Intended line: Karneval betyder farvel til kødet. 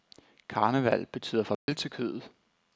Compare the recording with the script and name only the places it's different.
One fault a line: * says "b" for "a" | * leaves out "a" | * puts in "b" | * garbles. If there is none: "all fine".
all fine